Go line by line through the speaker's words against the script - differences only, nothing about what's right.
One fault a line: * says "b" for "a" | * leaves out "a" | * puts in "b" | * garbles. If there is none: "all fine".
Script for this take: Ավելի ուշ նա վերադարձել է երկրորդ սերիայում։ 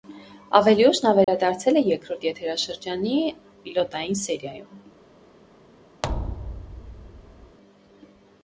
* puts in "եթերաշրջանի պիլոտային"